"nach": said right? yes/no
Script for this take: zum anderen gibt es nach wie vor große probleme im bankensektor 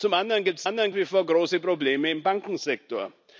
no